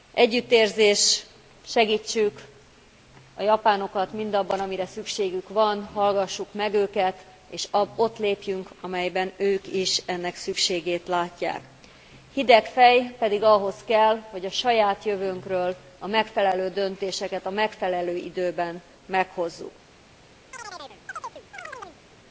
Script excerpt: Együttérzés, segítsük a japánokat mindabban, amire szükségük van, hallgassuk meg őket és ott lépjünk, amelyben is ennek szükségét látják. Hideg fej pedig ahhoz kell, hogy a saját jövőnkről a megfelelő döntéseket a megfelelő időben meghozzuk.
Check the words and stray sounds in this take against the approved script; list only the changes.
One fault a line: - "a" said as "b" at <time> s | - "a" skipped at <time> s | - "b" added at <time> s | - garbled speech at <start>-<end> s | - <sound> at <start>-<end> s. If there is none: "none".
- "ők" added at 9.4 s
- chirp at 20.5-22.0 s